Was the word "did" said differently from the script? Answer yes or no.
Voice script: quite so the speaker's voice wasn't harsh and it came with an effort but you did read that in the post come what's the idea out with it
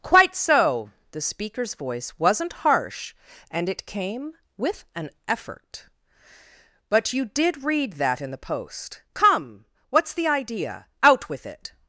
no